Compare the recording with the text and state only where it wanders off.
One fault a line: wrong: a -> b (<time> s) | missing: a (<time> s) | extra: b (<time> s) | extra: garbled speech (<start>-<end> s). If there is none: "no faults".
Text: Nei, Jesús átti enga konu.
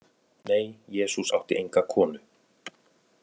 no faults